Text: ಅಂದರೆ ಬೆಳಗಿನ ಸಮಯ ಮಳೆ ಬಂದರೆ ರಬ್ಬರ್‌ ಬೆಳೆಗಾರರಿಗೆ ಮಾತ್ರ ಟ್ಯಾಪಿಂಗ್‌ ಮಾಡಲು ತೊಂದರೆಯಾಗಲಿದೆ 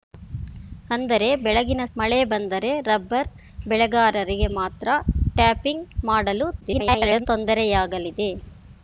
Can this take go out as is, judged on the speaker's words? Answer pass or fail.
fail